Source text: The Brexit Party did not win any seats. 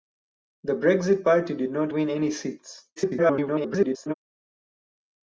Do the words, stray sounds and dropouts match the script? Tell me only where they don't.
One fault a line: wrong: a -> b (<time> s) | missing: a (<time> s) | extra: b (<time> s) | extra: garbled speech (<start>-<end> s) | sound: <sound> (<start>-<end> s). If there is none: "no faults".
extra: garbled speech (3.0-4.1 s)